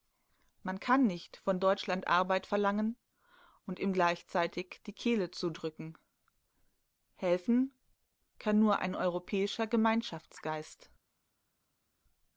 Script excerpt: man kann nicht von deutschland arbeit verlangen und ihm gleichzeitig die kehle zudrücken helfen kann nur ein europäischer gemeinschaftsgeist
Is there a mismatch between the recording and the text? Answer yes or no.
no